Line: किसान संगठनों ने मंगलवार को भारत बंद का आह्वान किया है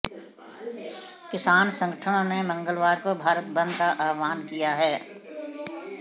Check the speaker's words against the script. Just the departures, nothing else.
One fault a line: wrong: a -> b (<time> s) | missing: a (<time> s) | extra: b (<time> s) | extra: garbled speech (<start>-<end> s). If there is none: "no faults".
no faults